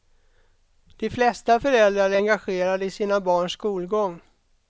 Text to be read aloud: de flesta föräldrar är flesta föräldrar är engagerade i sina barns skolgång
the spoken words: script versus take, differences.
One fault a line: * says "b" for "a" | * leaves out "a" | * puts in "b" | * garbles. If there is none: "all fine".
* leaves out "flesta föräldrar är"